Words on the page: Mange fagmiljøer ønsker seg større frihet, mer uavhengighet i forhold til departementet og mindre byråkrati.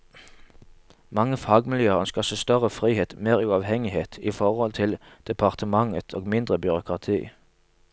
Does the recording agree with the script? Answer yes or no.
yes